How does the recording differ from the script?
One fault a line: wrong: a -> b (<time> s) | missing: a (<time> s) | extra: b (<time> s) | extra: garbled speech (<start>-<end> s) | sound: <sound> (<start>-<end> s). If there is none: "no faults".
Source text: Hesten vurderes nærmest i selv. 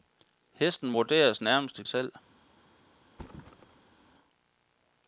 sound: thud (3.1-4.0 s)